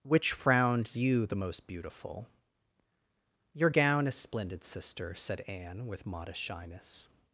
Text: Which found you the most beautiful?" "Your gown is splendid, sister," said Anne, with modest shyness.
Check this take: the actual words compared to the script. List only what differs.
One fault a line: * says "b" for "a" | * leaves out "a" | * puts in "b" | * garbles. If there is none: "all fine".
* says "frowned" for "found"